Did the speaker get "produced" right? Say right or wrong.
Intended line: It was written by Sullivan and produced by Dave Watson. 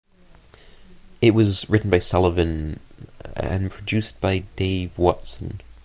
right